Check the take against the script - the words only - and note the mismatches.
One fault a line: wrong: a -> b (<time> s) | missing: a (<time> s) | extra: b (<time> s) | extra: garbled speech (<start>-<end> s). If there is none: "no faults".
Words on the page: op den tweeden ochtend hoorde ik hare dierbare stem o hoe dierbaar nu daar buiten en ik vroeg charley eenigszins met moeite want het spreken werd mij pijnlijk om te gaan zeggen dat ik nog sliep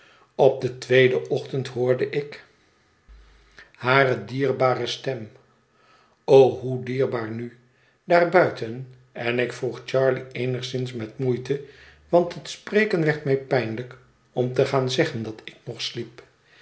no faults